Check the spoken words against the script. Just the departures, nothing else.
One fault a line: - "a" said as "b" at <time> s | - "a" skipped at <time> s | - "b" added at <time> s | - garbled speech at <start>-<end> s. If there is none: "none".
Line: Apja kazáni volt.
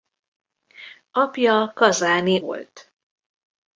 none